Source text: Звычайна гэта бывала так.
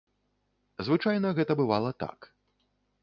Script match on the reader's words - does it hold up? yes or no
yes